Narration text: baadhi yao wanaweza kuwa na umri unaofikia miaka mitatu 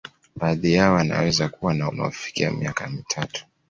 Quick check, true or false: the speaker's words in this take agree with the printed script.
false